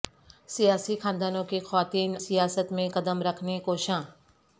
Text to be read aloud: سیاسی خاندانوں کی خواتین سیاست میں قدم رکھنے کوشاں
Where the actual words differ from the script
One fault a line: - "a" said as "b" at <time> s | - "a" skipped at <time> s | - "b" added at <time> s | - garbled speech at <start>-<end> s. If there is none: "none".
none